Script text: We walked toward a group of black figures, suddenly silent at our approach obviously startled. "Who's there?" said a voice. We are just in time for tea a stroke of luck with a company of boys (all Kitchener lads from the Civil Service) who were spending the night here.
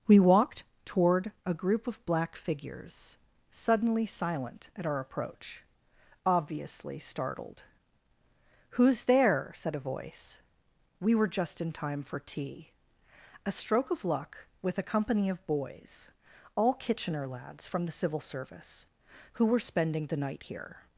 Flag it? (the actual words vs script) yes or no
yes